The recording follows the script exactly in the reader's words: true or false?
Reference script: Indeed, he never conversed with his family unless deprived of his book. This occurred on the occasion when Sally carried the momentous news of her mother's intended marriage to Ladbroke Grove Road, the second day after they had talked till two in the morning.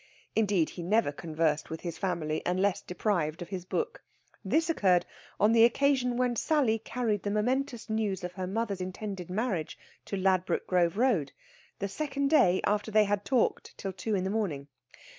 true